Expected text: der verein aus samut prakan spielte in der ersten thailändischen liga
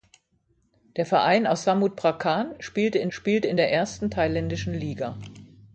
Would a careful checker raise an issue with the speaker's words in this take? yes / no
yes